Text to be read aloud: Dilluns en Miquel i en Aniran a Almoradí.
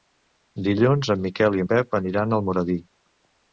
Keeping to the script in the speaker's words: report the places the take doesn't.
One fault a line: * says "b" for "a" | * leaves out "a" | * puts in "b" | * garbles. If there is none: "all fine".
* puts in "Pep"